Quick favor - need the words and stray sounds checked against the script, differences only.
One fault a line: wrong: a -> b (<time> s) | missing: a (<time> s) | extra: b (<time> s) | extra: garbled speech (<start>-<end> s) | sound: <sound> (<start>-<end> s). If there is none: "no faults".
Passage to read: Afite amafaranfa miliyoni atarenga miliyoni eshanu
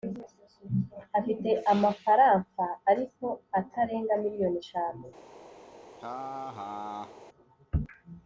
wrong: miliyoni -> ariko (2.9 s)
sound: laugh (5.9-7.2 s)